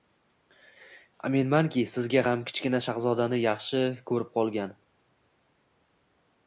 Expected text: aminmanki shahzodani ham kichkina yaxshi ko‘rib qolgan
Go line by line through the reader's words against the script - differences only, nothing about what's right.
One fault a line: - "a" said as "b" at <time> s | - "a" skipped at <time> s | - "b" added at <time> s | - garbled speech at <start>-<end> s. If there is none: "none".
- "shahzodani" said as "sizga" at 2.0 s
- "shahzodani" added at 2.9 s